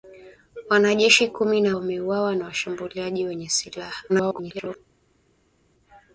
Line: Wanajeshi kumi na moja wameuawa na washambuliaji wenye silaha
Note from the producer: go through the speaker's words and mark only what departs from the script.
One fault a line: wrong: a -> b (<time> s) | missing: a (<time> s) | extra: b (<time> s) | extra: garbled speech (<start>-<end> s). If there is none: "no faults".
missing: moja (1.8 s)
extra: garbled speech (4.1-4.8 s)